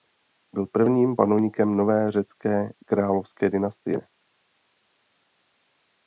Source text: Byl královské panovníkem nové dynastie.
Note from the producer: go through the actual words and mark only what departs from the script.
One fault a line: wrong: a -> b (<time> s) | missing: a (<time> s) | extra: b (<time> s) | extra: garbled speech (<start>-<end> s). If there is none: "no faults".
wrong: královské -> prvním (0.6 s)
extra: řecké královské (2.1 s)